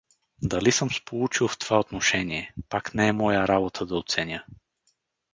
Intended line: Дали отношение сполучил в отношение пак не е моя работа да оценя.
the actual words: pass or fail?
fail